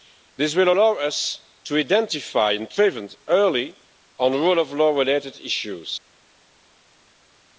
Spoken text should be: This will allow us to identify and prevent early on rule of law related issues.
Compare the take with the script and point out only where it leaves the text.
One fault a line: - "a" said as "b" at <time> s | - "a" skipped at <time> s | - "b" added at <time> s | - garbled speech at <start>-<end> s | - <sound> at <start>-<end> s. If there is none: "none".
none